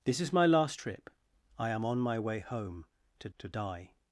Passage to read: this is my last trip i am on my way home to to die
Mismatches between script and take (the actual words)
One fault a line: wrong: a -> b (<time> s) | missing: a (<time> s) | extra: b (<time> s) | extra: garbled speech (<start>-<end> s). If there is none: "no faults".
no faults